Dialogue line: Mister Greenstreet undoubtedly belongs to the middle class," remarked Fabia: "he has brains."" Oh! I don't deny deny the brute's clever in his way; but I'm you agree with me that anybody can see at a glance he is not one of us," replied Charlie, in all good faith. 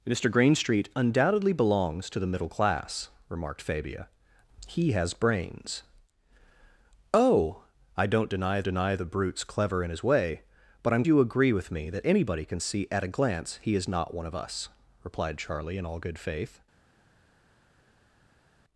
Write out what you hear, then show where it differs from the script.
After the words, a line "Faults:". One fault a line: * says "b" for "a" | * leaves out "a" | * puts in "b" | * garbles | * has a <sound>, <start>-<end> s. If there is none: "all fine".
Mister Greenstreet undoubtedly belongs to the middle class," remarked Fabia: "he has brains."" Oh! I don't deny deny the brute's clever in his way; but I'm you agree with me that anybody can see at a glance he is not one of us," replied Charlie, in all good faith.
Faults:
all fine